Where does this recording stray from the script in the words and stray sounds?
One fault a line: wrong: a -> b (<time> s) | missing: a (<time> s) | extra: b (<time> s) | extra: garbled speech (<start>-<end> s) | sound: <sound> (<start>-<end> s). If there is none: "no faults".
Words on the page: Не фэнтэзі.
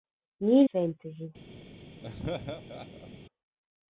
sound: laugh (2.0-3.1 s)